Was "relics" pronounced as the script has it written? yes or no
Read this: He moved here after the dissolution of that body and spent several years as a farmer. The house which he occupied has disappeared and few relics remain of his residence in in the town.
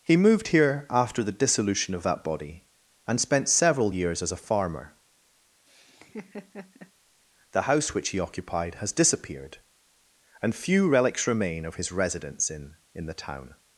yes